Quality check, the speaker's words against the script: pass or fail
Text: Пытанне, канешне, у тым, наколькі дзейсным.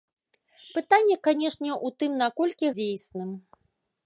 pass